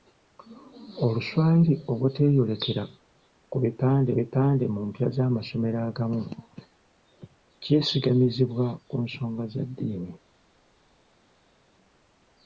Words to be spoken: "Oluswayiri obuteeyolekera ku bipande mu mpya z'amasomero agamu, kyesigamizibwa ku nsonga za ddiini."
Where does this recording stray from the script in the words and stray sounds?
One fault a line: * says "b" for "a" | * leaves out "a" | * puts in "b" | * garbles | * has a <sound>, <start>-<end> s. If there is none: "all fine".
* puts in "bipande"